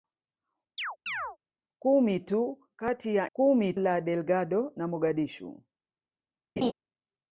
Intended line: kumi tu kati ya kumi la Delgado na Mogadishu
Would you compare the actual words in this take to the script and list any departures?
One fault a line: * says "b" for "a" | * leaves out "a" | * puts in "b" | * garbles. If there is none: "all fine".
all fine